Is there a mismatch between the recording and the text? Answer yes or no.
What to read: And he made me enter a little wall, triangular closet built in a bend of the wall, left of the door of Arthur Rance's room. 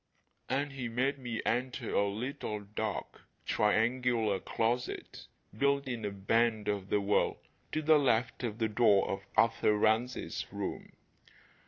yes